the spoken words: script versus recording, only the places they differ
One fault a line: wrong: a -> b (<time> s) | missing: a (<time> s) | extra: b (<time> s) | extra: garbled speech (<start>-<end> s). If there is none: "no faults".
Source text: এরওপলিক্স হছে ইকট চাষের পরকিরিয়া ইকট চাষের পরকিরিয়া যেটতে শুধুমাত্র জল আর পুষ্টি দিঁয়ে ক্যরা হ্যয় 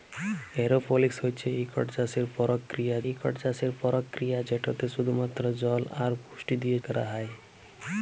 no faults